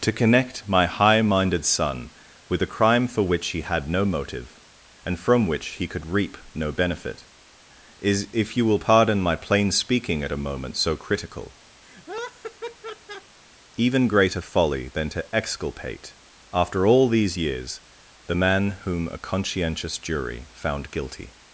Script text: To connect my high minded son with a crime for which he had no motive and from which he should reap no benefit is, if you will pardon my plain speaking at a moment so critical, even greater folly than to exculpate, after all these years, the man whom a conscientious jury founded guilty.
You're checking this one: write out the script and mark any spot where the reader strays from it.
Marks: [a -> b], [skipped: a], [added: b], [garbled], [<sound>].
To connect my high minded son with a crime for which he had no motive and from which he [should -> could] reap no benefit is, if you will pardon my plain speaking at a moment so critical, [laugh] even greater folly than to exculpate, after all these years, the man whom a conscientious jury [founded -> found] guilty.